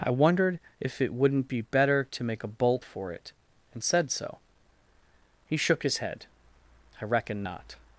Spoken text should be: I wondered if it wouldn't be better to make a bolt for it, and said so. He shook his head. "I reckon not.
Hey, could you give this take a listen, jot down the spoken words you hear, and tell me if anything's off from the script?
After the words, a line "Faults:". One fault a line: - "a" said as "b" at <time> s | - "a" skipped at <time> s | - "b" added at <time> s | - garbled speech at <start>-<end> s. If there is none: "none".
I wondered if it wouldn't be better to make a bolt for it, and said so. He shook his head. "I reckon not.
Faults:
none